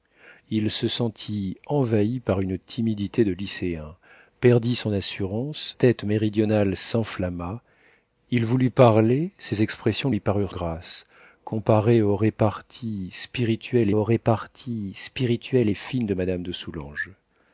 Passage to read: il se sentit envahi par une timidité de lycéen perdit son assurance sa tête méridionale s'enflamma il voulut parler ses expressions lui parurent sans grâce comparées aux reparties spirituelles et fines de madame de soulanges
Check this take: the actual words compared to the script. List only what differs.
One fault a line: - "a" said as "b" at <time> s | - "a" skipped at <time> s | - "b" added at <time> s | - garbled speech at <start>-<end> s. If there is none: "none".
- "sa" skipped at 5.8 s
- "sans" skipped at 10.5 s
- "aux reparties spirituelles" added at 13.9 s